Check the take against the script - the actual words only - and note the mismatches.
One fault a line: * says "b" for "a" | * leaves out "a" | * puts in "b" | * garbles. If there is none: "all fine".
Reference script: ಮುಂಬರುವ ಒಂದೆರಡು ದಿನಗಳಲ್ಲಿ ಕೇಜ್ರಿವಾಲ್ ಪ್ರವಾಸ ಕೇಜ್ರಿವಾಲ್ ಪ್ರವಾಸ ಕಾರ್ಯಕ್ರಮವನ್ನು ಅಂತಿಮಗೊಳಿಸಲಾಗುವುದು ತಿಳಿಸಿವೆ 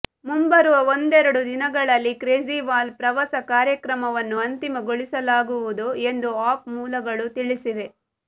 * says "ಕಾರ್ಯಕ್ರಮವನ್ನು ಅಂತಿಮಗೊಳಿಸಲಾಗುವುದು ಎಂದು ಆಪ್ ಮೂಲಗಳು" for "ಕೇಜ್ರಿವಾಲ್ ಪ್ರವಾಸ ಕಾರ್ಯಕ್ರಮವನ್ನು ಅಂತಿಮಗೊಳಿಸಲಾಗುವುದು"